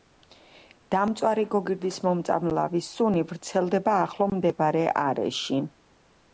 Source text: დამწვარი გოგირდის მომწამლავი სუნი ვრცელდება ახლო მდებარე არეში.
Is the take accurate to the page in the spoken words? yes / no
yes